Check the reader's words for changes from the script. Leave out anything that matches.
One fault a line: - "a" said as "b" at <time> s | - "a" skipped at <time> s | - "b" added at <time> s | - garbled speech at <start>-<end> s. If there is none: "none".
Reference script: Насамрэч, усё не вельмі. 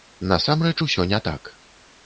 - "вельмі" said as "так" at 1.3 s